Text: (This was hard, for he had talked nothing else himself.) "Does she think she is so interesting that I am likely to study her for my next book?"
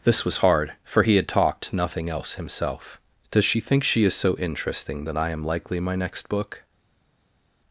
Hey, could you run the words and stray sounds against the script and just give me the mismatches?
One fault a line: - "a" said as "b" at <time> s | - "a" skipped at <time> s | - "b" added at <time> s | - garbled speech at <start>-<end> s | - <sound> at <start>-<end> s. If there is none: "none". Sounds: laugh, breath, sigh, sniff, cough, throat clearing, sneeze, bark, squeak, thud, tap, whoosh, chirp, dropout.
- "to study her for" skipped at 5.8 s